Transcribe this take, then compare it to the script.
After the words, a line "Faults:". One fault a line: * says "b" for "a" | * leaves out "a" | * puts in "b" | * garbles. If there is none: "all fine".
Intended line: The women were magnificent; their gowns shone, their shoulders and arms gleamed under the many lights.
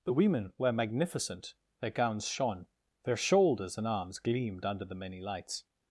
The women were magnificent; their gowns shone, their shoulders and arms gleamed under the many lights.
Faults:
all fine